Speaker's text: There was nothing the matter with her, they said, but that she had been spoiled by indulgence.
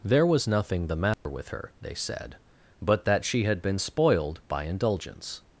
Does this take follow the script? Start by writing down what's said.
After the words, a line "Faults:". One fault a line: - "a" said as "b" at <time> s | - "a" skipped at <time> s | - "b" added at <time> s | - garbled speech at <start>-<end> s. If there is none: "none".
There was nothing the matter with her, they said, but that she had been spoiled by indulgence.
Faults:
none